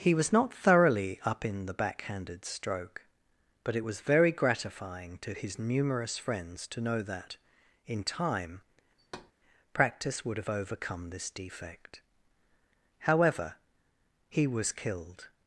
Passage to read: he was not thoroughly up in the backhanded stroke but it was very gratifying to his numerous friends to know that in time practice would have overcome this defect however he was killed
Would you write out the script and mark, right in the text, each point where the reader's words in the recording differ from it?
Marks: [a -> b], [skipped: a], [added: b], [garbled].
he was not thoroughly up in the backhanded stroke but it was very gratifying to his numerous friends to know that in time practice would have overcome this defect however he was killed